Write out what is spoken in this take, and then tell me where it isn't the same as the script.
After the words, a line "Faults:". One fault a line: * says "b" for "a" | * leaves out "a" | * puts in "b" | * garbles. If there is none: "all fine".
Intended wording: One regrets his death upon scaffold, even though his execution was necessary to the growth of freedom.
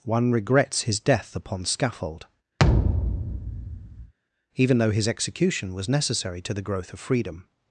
One regrets his death upon scaffold, even though his execution was necessary to the growth of freedom.
Faults:
all fine